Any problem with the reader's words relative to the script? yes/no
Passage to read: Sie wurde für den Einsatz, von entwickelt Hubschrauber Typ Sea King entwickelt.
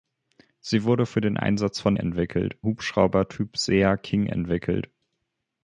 no